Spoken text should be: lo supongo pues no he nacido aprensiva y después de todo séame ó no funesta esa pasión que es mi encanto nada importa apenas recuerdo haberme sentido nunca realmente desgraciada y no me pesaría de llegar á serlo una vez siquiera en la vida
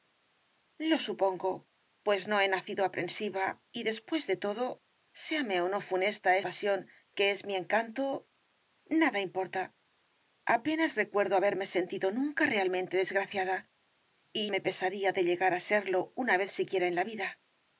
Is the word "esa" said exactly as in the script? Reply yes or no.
no